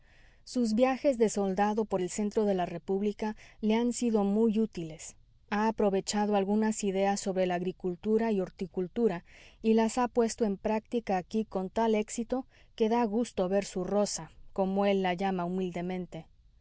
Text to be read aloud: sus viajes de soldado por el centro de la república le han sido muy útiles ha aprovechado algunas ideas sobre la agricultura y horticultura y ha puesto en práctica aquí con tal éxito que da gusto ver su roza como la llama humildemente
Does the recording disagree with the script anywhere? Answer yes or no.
yes